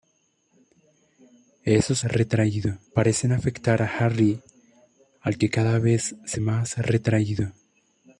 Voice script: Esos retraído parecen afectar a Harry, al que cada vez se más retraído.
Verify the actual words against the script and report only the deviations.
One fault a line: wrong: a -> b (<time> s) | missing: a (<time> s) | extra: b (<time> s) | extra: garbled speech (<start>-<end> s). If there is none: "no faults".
no faults